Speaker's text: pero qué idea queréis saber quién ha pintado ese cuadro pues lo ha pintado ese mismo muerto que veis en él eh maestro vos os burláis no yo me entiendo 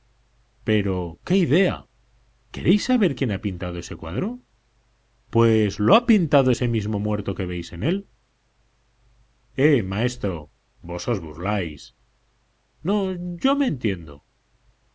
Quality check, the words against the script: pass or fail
pass